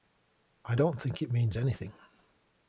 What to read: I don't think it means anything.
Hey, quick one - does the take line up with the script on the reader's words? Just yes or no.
yes